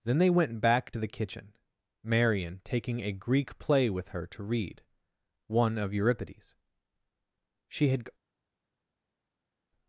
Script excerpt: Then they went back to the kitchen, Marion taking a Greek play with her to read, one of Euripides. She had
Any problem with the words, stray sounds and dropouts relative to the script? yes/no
no